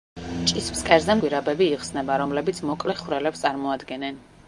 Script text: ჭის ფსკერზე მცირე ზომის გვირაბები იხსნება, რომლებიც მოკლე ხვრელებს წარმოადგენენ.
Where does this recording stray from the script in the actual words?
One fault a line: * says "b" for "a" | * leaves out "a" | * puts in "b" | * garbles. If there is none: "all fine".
* leaves out "მცირე ზომის"